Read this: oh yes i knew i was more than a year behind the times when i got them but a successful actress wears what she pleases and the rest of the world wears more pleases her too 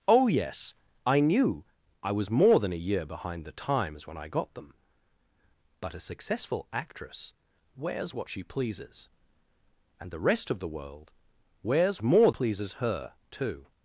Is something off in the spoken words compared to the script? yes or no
no